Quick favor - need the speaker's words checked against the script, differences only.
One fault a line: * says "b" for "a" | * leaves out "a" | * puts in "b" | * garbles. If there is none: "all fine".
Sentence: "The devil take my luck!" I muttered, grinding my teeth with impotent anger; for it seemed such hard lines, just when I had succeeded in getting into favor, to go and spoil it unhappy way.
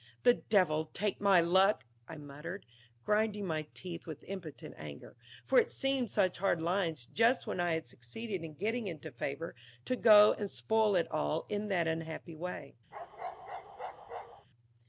* puts in "all in that"